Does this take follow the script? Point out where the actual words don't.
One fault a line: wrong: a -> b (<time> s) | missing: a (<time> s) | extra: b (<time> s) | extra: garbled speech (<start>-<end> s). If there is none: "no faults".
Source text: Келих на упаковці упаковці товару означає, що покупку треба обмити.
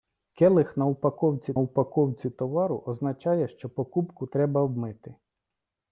no faults